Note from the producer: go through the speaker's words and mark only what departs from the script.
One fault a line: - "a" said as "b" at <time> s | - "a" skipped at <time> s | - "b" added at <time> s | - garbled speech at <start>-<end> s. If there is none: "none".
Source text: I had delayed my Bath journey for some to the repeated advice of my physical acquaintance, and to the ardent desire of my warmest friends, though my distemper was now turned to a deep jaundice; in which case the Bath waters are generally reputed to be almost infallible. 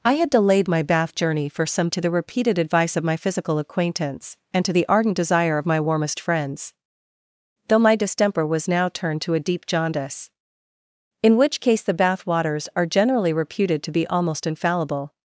none